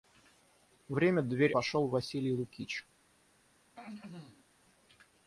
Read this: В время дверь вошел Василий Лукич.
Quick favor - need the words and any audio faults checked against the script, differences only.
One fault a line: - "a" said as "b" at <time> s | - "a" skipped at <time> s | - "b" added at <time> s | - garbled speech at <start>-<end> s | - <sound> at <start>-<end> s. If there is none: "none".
- throat clearing at 3.7-4.4 s